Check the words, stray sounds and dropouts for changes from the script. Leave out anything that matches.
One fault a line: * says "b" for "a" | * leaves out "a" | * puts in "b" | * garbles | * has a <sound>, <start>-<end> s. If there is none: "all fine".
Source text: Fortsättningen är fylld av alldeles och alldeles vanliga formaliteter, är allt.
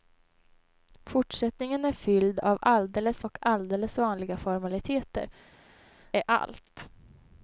all fine